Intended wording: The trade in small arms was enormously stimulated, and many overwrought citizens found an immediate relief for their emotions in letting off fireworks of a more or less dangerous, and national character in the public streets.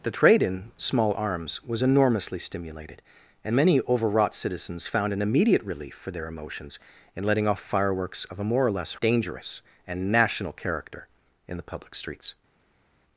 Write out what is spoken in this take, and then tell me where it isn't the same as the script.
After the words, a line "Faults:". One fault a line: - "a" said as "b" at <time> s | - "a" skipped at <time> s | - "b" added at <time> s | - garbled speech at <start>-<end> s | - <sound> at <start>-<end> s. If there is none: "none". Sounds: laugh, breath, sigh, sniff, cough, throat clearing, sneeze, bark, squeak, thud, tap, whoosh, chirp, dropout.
The trade in small arms was enormously stimulated, and many overwrought citizens found an immediate relief for their emotions in letting off fireworks of a more or less dangerous, and national character in the public streets.
Faults:
none